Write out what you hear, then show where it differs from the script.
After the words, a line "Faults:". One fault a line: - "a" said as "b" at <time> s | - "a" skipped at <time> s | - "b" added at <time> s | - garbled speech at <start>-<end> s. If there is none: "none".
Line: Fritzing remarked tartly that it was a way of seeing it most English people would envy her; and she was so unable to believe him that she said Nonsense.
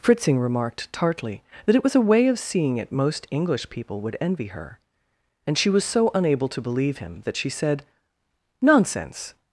Fritzing remarked tartly that it was a way of seeing it most English people would envy her; and she was so unable to believe him that she said Nonsense.
Faults:
none